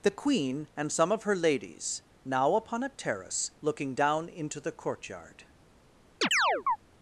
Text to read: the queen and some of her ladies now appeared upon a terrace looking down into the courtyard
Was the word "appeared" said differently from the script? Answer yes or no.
yes